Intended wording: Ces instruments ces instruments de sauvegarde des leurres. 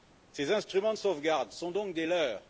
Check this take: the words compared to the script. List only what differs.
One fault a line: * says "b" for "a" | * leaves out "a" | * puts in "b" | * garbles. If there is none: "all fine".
* says "de sauvegarde sont donc" for "ces instruments de sauvegarde"